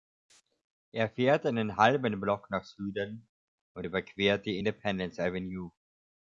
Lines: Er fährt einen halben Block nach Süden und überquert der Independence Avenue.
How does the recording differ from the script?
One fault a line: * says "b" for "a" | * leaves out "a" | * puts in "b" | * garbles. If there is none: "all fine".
* says "die" for "der"